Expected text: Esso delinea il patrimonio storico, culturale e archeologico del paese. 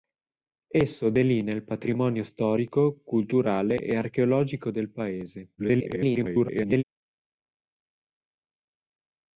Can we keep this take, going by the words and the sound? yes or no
no